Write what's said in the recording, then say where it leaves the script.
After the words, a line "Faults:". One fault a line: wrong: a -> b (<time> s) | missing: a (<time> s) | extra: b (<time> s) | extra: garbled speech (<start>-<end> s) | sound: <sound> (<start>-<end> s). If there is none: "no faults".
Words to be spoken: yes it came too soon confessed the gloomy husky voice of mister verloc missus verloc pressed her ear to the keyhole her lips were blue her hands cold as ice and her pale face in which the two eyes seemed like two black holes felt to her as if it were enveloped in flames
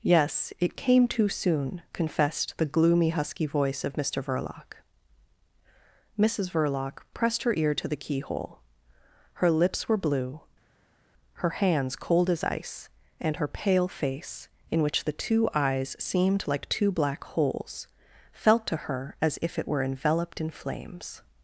yes it came too soon confessed the gloomy husky voice of mister verloc missus verloc pressed her ear to the keyhole her lips were blue her hands cold as ice and her pale face in which the two eyes seemed like two black holes felt to her as if it were enveloped in flames
Faults:
no faults